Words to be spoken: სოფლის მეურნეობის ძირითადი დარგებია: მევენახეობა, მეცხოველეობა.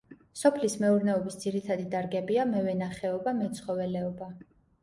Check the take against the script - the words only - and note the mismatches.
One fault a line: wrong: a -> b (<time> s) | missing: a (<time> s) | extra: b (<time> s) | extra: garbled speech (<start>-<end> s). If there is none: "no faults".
no faults